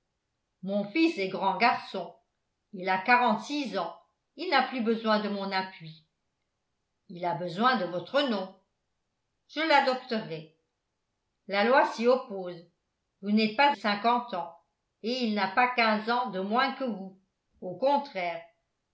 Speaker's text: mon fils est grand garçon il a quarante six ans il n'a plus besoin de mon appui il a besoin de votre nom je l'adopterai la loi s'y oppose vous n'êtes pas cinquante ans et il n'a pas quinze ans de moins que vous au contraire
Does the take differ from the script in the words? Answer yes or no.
no